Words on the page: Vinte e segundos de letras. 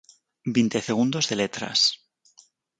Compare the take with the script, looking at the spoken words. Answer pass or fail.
pass